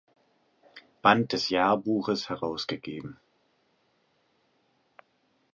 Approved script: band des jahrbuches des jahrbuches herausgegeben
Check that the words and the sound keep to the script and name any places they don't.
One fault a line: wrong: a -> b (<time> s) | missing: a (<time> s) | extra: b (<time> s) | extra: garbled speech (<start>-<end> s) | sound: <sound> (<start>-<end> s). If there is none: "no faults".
missing: des jahrbuches (2.3 s)